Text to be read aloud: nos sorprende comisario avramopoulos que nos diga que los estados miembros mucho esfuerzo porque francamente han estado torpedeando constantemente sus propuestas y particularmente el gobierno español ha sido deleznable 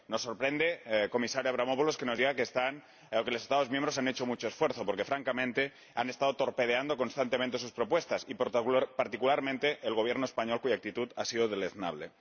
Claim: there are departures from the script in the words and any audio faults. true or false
true